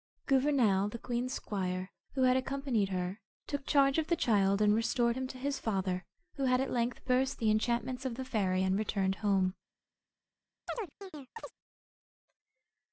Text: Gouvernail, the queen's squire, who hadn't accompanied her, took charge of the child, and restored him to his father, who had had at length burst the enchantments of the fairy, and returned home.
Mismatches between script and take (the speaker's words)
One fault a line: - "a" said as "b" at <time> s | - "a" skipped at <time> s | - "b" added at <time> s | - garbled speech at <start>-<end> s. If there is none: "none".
- "hadn't" said as "had" at 2.2 s
- "had" skipped at 6.6 s